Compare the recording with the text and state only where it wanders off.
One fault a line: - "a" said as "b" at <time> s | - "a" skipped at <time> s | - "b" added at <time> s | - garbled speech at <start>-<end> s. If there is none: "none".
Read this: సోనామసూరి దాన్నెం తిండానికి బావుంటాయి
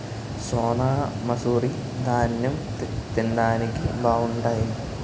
none